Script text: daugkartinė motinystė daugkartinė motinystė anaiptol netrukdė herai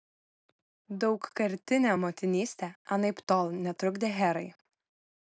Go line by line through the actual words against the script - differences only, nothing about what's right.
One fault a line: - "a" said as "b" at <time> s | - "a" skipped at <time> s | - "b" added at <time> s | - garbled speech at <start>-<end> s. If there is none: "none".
- "daugkartinė motinystė" skipped at 2.7 s